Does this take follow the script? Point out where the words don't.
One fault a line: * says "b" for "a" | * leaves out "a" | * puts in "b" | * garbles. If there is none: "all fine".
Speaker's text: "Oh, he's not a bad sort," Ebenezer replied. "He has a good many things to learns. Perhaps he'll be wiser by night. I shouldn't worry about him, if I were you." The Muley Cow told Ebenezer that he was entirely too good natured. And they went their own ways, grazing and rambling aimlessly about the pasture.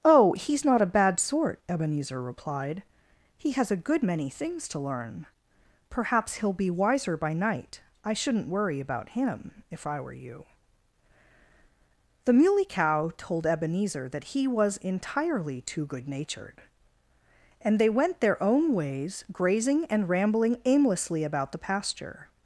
* says "learn" for "learns"